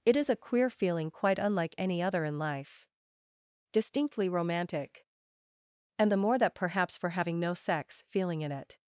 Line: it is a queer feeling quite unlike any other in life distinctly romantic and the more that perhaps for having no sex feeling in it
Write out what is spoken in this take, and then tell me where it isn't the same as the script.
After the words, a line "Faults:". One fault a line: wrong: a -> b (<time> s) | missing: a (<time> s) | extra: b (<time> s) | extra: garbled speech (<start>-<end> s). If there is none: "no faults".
it is a queer feeling quite unlike any other in life distinctly romantic and the more that perhaps for having no sex feeling in it
Faults:
no faults